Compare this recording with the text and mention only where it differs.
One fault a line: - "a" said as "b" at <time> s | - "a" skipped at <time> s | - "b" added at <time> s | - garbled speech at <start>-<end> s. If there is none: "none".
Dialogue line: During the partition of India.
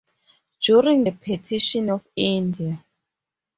none